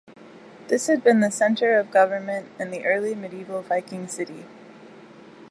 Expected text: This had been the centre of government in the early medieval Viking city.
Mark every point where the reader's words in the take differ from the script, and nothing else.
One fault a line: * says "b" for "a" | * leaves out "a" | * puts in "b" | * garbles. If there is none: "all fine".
all fine